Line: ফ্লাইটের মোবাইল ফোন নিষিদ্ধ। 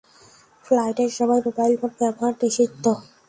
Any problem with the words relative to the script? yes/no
yes